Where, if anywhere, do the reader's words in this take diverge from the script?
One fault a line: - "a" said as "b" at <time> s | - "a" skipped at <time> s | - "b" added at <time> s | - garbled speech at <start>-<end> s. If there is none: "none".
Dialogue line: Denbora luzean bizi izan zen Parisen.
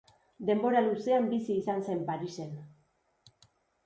none